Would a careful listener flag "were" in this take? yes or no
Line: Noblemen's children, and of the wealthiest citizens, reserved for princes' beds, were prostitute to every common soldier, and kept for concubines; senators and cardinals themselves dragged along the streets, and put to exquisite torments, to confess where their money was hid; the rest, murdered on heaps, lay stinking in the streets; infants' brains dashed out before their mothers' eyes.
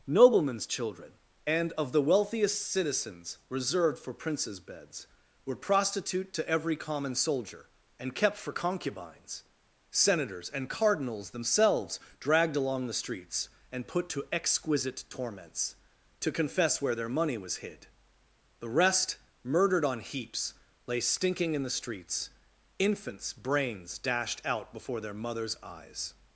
no